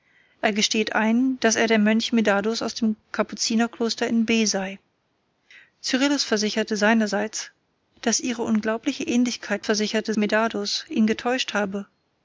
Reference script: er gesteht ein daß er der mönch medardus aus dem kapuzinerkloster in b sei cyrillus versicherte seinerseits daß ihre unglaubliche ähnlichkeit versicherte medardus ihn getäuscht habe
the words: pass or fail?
pass